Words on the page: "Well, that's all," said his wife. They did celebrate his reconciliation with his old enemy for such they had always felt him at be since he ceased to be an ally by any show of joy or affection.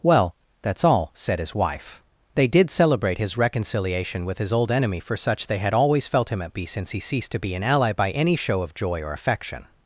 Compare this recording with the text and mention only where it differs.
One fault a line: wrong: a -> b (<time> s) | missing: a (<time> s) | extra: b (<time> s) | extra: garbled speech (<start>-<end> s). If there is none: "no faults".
no faults